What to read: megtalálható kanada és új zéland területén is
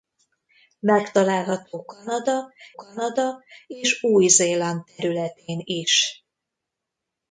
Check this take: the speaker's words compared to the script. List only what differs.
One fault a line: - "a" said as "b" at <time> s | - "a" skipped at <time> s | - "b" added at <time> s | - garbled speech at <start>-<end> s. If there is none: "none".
- "kanada" added at 2.7 s